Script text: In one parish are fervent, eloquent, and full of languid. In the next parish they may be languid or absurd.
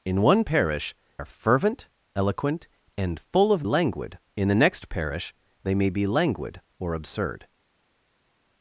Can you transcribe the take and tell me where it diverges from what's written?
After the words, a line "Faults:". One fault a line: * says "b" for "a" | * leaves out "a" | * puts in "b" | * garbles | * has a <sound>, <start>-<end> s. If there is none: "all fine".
In one parish are fervent, eloquent, and full of languid. In the next parish they may be languid or absurd.
Faults:
all fine